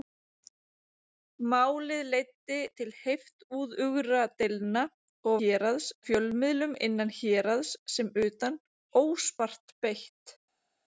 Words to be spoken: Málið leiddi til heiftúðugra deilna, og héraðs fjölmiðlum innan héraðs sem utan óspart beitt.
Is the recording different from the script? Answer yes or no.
no